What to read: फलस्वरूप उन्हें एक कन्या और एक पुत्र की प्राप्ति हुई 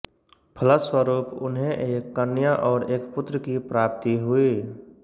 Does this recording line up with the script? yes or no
yes